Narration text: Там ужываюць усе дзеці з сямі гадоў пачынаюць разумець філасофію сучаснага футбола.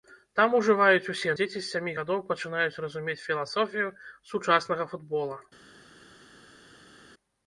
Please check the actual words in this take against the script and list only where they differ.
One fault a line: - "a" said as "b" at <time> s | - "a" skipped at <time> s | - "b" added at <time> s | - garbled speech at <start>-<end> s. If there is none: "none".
none